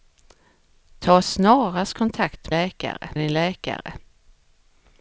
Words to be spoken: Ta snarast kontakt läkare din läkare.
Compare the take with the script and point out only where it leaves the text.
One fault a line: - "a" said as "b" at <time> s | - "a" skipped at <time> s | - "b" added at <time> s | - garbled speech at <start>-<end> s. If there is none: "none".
none